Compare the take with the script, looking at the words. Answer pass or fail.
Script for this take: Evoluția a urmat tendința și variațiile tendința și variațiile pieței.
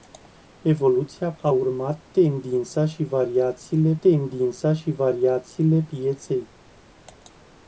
pass